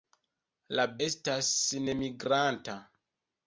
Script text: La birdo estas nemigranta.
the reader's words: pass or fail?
fail